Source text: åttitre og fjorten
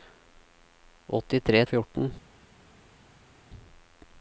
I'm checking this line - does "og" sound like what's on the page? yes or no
yes